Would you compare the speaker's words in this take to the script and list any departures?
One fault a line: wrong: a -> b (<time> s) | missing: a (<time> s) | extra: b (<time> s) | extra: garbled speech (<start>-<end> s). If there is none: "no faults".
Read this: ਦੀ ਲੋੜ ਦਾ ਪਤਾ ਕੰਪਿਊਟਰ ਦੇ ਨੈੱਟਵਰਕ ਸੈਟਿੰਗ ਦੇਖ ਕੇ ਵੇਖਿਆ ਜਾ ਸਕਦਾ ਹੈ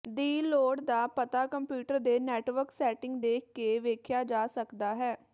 no faults